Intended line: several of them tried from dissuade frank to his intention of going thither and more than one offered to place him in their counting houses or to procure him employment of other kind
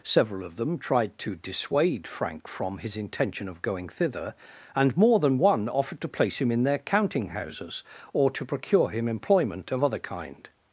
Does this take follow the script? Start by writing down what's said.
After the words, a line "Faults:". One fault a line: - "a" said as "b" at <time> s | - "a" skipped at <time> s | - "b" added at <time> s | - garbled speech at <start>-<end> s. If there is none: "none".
several of them tried to dissuade frank from his intention of going thither and more than one offered to place him in their counting houses or to procure him employment of other kind
Faults:
- "from" said as "to" at 1.2 s
- "to" said as "from" at 2.5 s